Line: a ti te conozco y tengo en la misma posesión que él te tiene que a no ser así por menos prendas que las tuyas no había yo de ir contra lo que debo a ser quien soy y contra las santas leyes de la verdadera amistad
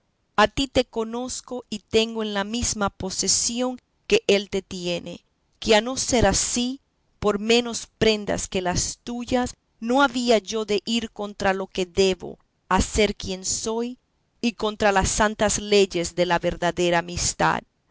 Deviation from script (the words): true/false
false